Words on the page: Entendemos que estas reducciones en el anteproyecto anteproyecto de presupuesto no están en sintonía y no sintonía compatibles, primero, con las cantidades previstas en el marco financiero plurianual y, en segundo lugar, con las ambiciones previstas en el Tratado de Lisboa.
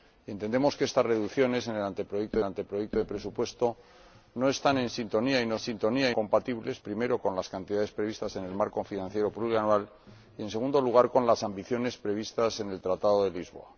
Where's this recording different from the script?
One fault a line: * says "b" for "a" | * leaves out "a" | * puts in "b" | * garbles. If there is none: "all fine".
all fine